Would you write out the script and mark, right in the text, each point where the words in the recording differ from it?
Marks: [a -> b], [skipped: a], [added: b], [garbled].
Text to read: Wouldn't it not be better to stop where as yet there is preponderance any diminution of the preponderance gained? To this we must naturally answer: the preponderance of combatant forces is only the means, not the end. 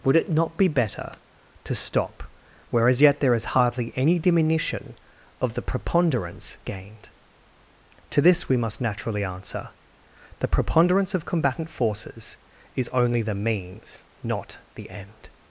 [Wouldn't -> Would] it not be better to stop where as yet there is [preponderance -> hardly] any diminution of the preponderance gained? To this we must naturally answer: the preponderance of combatant forces is only the means, not the end.